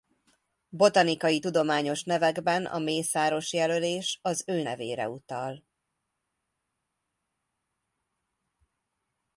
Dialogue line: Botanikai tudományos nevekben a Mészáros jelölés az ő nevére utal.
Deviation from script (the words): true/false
false